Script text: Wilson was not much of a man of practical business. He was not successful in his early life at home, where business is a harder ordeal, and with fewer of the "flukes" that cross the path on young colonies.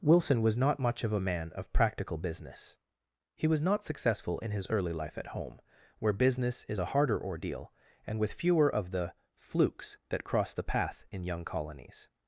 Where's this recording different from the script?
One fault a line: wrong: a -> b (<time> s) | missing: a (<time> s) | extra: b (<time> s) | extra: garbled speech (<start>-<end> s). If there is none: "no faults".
wrong: on -> in (11.1 s)